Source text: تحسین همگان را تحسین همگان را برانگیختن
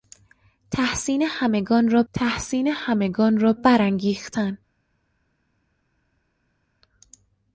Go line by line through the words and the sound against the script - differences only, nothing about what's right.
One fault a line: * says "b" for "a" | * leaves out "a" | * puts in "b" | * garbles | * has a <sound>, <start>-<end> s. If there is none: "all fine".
all fine